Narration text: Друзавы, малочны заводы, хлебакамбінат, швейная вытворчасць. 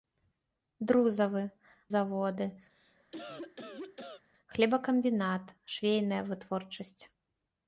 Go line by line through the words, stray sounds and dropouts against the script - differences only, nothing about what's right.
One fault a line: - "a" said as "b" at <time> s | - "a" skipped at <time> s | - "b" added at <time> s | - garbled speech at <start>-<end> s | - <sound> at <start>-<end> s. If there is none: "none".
- "малочны" skipped at 1.4 s
- cough at 2.7-4.2 s